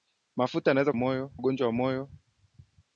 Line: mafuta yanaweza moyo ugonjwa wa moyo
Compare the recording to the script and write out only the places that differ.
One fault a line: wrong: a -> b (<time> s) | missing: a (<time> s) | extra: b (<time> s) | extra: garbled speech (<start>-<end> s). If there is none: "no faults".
no faults